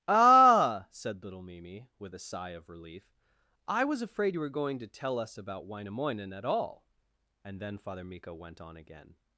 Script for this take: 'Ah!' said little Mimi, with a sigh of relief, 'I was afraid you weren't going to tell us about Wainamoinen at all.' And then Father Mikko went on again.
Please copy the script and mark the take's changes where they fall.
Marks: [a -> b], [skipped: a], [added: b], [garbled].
'Ah!' said little Mimi, with a sigh of relief, 'I was afraid you [weren't -> were] going to tell us about Wainamoinen at all.' And then Father Mikko went on again.